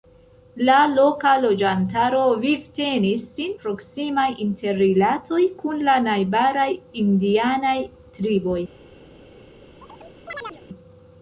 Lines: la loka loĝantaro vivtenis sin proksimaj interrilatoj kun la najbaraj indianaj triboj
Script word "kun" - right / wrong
right